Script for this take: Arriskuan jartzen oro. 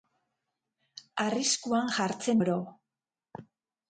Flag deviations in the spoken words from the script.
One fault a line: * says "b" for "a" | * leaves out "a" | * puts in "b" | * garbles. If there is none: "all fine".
all fine